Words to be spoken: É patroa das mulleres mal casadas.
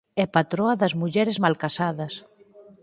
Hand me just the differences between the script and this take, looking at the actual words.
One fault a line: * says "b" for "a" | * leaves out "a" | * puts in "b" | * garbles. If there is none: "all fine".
all fine